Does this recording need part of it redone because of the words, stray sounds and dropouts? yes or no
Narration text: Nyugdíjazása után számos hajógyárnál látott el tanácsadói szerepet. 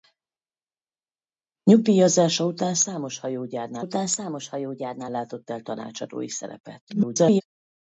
yes